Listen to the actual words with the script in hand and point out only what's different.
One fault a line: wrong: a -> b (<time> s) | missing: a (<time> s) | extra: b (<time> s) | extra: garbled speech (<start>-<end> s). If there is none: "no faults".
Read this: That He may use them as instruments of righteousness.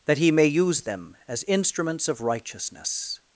no faults